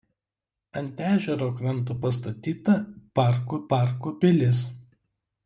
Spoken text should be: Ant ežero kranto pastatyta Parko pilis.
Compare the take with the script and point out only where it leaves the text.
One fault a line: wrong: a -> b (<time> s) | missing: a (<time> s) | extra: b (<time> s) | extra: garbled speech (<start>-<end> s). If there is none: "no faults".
extra: Parko (3.7 s)